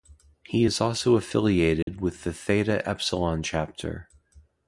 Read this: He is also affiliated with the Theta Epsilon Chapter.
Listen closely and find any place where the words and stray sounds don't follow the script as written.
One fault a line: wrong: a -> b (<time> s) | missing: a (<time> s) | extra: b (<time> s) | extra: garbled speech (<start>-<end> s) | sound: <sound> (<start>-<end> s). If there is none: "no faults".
sound: dropout (1.8-1.9 s)